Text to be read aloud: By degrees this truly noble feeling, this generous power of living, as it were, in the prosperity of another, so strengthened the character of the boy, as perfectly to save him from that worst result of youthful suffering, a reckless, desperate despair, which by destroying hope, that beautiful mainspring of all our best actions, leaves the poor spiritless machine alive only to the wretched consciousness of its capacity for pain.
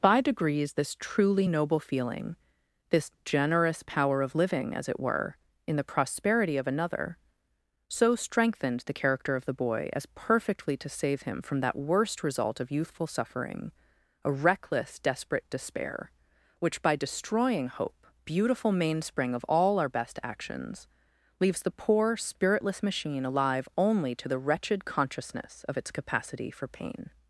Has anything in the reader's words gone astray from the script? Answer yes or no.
yes